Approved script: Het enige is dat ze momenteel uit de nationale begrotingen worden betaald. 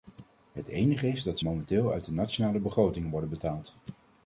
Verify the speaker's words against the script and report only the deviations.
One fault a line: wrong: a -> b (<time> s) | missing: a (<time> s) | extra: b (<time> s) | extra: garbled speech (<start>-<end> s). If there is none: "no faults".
missing: ze (1.4 s)